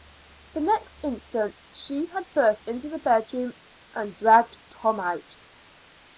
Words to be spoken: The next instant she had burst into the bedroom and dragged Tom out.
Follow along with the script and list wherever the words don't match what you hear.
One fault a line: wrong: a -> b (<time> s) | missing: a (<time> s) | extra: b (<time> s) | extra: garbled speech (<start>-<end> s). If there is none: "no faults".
no faults